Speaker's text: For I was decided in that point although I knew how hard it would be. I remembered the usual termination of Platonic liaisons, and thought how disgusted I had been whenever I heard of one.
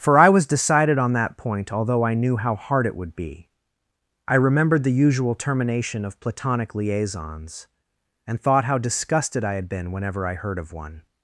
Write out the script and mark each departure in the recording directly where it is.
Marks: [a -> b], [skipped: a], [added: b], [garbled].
For I was decided [in -> on] that point although I knew how hard it would be. I remembered the usual termination of Platonic liaisons, and thought how disgusted I had been whenever I heard of one.